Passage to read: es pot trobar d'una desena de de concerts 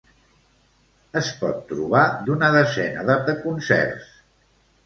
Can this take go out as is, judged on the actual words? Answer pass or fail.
pass